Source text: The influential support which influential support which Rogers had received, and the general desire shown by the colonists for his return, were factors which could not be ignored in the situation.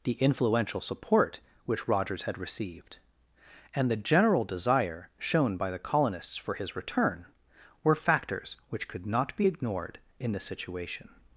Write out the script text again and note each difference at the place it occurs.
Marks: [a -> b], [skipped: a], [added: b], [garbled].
The influential support which [skipped: influential support which] Rogers had received, and the general desire shown by the colonists for his return, were factors which could not be ignored in the situation.